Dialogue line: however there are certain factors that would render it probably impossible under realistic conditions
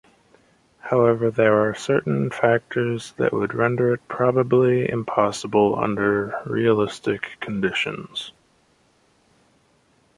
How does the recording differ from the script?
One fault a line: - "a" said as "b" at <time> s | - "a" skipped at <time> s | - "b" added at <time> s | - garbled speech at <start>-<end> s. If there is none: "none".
none